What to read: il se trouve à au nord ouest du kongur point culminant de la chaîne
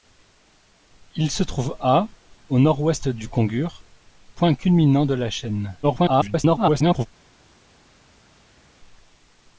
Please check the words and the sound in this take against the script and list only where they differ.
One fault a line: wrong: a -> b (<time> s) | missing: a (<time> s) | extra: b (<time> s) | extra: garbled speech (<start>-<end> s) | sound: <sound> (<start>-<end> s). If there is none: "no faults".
extra: garbled speech (5.8-7.1 s)